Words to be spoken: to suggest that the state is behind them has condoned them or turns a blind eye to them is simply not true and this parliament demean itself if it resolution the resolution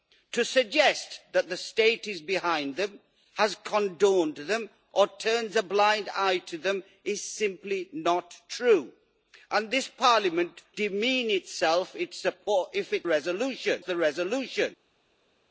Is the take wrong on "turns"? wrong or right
right